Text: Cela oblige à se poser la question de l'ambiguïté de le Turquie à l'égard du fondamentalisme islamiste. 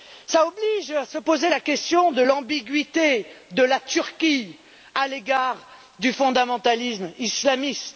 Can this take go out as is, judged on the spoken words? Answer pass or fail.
fail